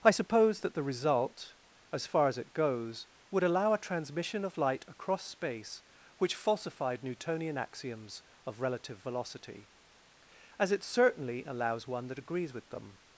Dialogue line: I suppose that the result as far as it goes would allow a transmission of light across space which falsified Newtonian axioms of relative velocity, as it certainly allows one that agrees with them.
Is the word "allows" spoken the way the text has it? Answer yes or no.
yes